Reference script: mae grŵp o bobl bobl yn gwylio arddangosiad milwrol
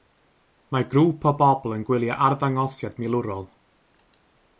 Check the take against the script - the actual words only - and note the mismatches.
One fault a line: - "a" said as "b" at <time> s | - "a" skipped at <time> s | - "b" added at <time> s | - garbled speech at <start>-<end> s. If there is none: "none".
- "bobl" skipped at 1.8 s